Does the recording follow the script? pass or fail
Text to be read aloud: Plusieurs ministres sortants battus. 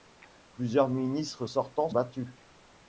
pass